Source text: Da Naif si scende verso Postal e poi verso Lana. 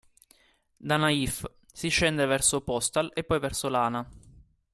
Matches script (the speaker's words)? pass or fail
pass